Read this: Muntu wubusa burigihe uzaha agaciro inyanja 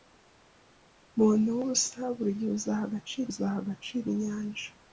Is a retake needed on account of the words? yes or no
yes